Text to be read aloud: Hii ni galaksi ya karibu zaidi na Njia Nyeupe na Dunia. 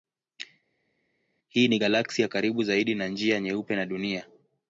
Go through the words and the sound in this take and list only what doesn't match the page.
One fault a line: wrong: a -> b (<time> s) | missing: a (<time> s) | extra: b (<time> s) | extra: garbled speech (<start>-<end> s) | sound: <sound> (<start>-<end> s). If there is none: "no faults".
no faults